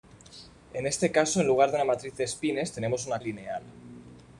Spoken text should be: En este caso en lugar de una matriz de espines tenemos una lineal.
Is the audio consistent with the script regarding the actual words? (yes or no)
yes